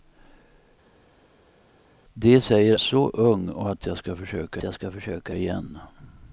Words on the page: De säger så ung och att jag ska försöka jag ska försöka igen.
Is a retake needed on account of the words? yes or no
no